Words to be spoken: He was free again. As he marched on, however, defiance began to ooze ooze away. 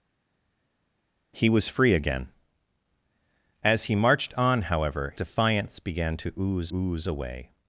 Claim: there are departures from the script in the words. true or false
false